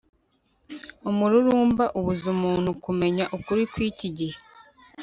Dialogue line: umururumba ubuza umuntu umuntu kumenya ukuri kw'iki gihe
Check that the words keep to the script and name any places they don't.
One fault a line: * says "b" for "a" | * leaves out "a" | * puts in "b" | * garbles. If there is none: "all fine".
* leaves out "umuntu"